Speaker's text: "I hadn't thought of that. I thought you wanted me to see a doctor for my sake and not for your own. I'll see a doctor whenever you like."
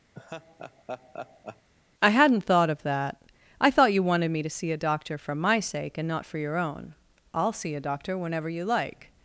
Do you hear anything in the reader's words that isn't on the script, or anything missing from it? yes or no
no